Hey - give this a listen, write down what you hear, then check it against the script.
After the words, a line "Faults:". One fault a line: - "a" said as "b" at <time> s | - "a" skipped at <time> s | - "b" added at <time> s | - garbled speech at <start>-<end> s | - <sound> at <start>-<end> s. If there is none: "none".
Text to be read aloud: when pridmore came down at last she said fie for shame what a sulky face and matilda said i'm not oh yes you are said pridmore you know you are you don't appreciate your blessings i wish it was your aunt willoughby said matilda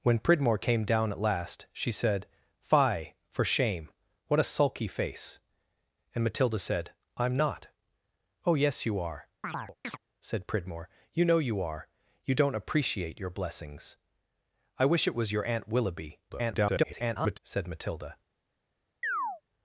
when pridmore came down at last she said fie for shame what a sulky face and matilda said i'm not oh yes you are said pridmore you know you are you don't appreciate your blessings i wish it was your aunt willoughby [garbled] said matilda
Faults:
- chirp at 9.4-10.0 s
- garbled speech at 16.3-17.4 s
- chirp at 19.0-19.4 s